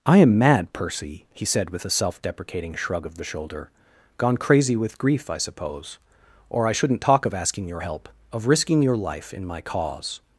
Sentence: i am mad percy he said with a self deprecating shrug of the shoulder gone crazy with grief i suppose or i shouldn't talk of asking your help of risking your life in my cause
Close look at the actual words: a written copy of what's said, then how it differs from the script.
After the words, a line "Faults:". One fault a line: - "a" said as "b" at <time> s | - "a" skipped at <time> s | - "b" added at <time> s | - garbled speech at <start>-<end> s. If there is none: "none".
i am mad percy he said with a self deprecating shrug of the shoulder gone crazy with grief i suppose or i shouldn't talk of asking your help of risking your life in my cause
Faults:
none